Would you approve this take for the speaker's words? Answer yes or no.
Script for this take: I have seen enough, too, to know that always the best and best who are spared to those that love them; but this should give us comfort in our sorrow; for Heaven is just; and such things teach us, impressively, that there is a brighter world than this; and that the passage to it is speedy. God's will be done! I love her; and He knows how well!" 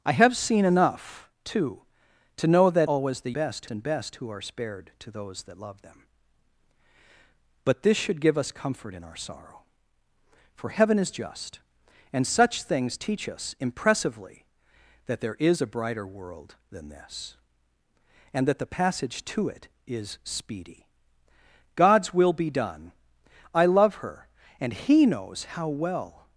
yes